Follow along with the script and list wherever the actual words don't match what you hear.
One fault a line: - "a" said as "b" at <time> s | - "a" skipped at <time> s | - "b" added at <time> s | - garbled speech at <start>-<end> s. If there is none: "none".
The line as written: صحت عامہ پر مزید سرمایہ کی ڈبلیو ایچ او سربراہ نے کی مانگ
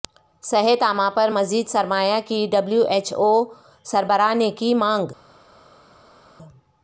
none